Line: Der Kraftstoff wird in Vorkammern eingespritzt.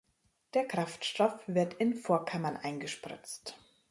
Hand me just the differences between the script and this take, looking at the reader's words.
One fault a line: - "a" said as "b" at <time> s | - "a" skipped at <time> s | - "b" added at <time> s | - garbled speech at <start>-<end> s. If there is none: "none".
none